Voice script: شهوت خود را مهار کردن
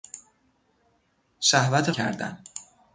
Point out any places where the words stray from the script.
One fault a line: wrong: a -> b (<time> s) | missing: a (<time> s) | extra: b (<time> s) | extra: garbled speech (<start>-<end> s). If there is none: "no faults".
missing: خود را مهار (1.9 s)